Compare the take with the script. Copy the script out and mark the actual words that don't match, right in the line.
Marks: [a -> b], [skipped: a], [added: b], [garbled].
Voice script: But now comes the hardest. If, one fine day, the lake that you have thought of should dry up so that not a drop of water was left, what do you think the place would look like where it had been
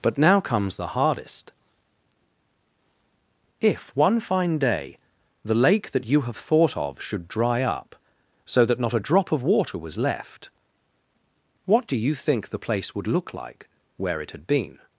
But now comes the hardest. If, one fine day, the lake that you have thought of should dry up so that not a drop of water was left, what do you think the place would look like where it had been